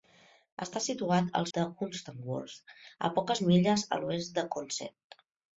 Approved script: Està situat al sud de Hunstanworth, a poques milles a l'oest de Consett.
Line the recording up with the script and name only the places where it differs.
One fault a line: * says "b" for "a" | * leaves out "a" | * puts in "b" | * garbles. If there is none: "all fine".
* leaves out "sud"